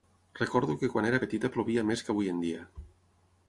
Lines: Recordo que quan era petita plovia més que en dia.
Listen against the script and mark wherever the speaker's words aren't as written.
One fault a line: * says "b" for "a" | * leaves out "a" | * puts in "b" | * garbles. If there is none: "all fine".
* puts in "avui"